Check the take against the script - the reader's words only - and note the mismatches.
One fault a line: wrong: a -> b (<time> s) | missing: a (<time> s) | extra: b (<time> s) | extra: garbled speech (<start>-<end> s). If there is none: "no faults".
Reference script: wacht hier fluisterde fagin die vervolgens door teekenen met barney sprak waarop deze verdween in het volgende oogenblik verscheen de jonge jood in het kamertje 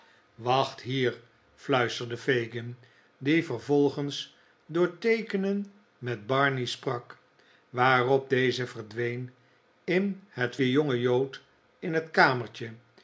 missing: volgende oogenblik verscheen (10.6 s)